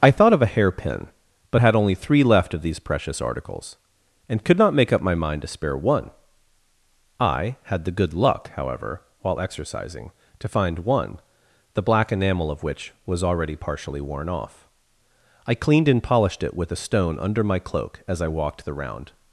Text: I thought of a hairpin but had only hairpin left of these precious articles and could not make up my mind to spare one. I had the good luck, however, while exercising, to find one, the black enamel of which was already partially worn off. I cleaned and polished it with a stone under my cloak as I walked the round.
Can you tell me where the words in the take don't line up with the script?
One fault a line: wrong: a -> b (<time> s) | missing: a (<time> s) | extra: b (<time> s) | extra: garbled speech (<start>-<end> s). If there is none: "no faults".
wrong: hairpin -> three (1.9 s)